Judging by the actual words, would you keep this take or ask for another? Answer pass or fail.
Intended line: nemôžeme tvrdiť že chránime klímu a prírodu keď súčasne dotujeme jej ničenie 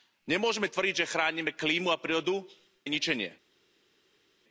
fail